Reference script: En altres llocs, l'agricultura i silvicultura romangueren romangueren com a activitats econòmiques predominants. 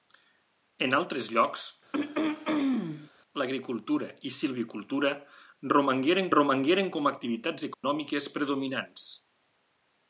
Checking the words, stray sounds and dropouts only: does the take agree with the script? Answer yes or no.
no